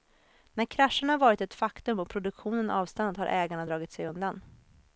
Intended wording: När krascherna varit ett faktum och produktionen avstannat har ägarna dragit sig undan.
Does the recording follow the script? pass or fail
pass